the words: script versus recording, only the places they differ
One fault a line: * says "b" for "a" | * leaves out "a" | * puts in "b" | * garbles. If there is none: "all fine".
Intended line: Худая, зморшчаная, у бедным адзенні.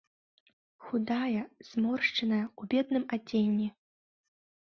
all fine